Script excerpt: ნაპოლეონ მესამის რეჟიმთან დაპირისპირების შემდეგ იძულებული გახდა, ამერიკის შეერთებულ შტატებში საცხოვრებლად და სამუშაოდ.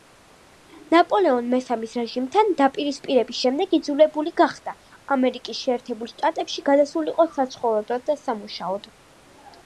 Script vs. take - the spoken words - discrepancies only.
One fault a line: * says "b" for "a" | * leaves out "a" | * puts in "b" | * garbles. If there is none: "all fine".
* puts in "გადასულიყო"